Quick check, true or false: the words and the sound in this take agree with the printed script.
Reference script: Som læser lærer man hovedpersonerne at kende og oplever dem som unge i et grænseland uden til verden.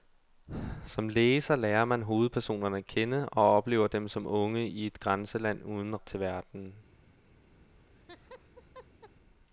false